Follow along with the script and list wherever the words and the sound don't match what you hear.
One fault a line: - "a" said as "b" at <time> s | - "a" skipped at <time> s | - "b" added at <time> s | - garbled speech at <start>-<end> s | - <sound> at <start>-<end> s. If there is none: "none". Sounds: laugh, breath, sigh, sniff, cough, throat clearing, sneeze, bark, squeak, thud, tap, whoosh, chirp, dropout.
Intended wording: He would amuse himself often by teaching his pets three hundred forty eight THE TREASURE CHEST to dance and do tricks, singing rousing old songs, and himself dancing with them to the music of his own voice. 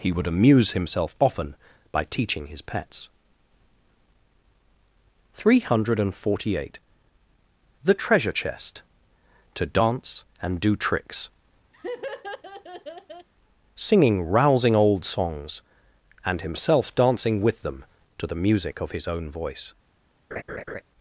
- laugh at 11.7-13.3 s
- laugh at 20.3-20.8 s